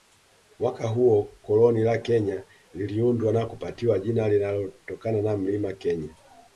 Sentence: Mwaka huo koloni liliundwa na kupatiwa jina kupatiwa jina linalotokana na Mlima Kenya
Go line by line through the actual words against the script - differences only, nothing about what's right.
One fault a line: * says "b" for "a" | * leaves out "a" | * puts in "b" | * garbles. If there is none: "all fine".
* puts in "la Kenya"
* leaves out "kupatiwa jina"